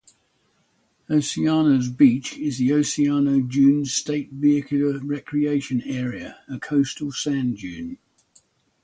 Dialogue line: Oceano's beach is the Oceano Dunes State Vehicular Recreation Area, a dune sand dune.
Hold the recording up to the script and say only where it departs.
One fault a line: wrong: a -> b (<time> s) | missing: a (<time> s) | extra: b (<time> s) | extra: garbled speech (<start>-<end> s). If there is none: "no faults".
wrong: dune -> coastal (6.6 s)